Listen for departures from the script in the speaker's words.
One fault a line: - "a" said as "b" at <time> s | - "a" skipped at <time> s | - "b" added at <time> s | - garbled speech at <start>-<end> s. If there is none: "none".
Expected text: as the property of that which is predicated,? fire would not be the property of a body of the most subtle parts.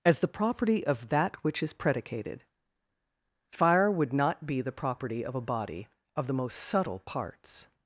none